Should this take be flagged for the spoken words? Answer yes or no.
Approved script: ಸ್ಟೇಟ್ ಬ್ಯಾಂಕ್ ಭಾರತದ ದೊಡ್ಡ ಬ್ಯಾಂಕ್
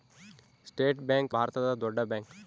no